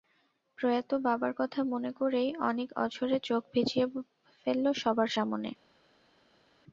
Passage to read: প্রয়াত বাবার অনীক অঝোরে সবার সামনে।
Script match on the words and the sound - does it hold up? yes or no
no